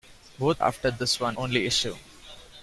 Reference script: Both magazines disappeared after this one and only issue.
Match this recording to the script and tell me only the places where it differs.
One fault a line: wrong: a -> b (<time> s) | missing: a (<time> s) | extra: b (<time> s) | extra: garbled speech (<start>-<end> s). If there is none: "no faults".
missing: magazines disappeared (0.6 s)
missing: and (1.4 s)